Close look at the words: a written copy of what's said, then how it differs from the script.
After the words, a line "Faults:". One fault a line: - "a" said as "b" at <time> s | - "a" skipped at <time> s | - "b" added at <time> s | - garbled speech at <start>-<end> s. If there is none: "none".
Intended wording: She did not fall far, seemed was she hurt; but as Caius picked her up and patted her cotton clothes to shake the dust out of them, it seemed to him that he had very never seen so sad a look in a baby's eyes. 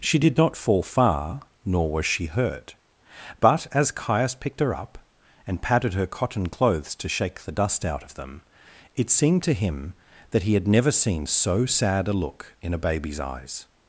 She did not fall far, nor was she hurt; but as Caius picked her up and patted her cotton clothes to shake the dust out of them, it seemed to him that he had never seen so sad a look in a baby's eyes.
Faults:
- "seemed" said as "nor" at 1.6 s
- "very" skipped at 10.7 s